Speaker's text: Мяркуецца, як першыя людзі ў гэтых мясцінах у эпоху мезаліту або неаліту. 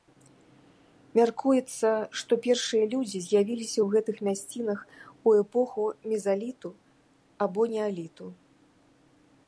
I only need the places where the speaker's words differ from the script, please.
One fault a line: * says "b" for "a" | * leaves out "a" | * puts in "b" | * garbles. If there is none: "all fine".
* says "што" for "як"
* puts in "з'явіліся"